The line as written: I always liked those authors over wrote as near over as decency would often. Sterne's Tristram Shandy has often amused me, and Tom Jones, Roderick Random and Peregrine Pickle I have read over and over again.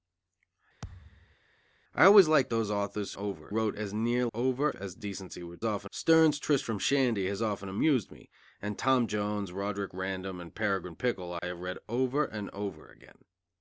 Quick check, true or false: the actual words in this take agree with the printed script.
true